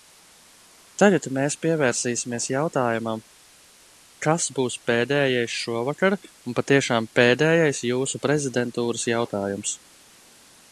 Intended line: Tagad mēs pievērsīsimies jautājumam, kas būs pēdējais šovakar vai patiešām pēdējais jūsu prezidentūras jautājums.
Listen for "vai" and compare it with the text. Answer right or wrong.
wrong